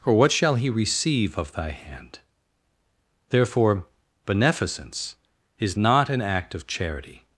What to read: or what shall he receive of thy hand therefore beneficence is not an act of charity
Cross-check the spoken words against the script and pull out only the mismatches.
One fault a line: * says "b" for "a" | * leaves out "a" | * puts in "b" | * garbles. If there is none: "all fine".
all fine